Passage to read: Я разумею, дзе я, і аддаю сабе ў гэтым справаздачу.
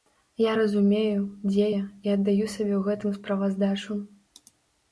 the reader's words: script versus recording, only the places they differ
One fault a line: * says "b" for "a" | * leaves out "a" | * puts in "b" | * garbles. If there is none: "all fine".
all fine